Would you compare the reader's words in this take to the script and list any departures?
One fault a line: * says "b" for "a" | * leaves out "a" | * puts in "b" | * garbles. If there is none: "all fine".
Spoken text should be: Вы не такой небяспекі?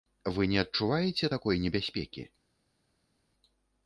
* puts in "адчуваеце"